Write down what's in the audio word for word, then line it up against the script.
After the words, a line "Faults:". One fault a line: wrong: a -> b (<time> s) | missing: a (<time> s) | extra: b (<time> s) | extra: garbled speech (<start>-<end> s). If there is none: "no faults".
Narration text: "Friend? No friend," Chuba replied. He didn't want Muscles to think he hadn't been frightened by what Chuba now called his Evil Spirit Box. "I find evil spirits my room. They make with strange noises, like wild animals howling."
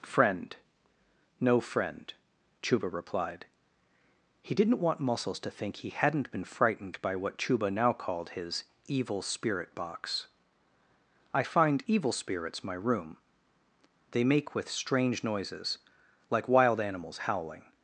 "Friend? No friend," Chuba replied. He didn't want Muscles to think he hadn't been frightened by what Chuba now called his Evil Spirit Box. "I find evil spirits my room. They make with strange noises, like wild animals howling."
Faults:
no faults